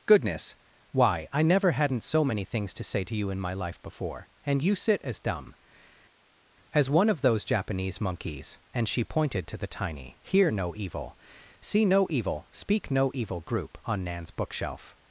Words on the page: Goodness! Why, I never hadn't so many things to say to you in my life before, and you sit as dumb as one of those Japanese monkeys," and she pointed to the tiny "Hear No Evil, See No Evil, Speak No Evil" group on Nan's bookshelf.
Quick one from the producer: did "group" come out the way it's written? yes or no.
yes